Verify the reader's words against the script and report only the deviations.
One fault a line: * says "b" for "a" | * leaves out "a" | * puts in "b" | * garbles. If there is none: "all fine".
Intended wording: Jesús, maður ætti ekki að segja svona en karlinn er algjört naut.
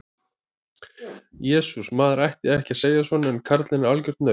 all fine